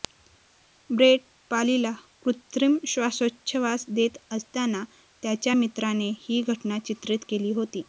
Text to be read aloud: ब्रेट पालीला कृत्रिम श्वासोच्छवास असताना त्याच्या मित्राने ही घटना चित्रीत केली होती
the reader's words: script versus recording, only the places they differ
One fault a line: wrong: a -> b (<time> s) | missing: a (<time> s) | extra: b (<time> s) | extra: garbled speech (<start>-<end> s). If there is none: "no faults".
extra: देत (3.9 s)